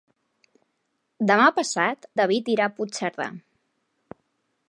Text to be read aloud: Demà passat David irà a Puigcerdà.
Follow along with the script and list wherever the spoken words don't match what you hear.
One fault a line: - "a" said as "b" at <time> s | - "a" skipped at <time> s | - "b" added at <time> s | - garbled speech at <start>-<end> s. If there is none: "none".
none